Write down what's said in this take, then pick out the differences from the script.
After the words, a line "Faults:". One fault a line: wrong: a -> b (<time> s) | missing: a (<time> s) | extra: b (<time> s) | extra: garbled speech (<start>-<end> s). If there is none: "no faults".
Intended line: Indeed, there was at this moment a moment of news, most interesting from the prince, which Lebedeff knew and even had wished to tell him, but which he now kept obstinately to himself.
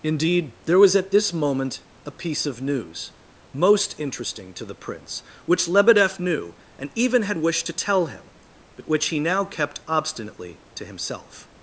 Indeed, there was at this moment a piece of news, most interesting to the prince, which Lebedeff knew and even had wished to tell him, but which he now kept obstinately to himself.
Faults:
wrong: moment -> piece (2.1 s)
wrong: from -> to (4.5 s)